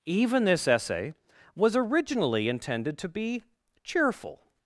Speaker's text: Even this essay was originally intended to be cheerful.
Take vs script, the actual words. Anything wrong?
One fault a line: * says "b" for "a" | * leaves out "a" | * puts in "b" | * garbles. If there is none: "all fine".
all fine